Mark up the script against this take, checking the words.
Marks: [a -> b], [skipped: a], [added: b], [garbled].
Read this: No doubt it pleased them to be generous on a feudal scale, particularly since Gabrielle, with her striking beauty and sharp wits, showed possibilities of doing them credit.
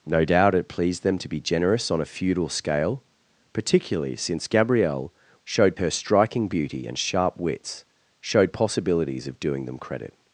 No doubt it pleased them to be generous on a feudal scale, particularly since Gabrielle, [with -> showed] her striking beauty and sharp wits, showed possibilities of doing them credit.